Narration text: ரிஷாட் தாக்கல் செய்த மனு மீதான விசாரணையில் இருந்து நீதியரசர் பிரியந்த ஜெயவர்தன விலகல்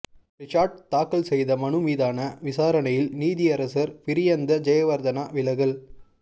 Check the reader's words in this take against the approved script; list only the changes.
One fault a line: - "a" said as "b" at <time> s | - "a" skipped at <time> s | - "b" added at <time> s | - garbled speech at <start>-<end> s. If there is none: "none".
- "இருந்து" skipped at 3.1 s